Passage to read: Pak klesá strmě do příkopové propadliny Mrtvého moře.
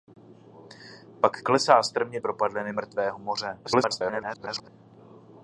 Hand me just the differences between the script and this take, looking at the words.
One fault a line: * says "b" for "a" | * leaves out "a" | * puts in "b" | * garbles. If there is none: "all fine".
* leaves out "do příkopové"
* garbles